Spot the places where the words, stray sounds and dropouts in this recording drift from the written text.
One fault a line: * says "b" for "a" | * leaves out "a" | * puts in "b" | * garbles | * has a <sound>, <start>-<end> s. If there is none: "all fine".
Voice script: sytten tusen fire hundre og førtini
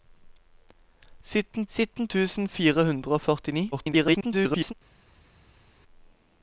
* puts in "sytten"
* garbles